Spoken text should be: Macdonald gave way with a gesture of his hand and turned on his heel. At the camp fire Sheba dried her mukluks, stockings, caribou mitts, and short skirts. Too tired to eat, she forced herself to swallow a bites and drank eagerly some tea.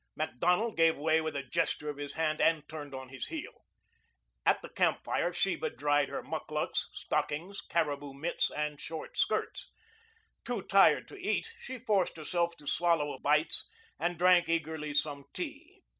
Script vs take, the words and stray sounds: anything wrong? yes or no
no